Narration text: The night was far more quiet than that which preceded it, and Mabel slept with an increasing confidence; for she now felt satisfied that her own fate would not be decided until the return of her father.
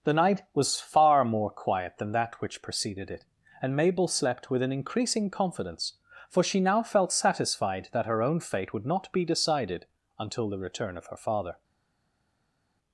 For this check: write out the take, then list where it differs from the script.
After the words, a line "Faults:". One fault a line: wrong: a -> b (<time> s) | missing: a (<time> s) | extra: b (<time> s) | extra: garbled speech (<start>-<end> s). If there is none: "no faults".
The night was far more quiet than that which preceded it, and Mabel slept with an increasing confidence; for she now felt satisfied that her own fate would not be decided until the return of her father.
Faults:
no faults